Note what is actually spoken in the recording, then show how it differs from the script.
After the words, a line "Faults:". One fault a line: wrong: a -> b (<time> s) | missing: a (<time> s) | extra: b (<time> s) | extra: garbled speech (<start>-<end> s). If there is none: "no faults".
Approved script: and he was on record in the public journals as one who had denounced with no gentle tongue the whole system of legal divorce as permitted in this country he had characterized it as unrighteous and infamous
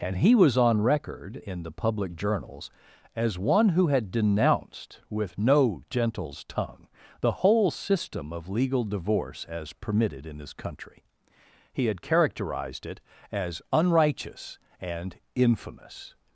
and he was on record in the public journals as one who had denounced with no gentles tongue the whole system of legal divorce as permitted in this country he had characterized it as unrighteous and infamous
Faults:
wrong: gentle -> gentles (5.9 s)